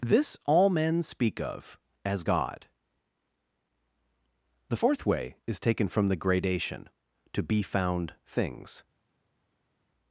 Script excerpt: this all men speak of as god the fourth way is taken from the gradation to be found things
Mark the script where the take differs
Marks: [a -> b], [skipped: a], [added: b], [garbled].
this all men speak of as god the fourth way is taken from the gradation to be found things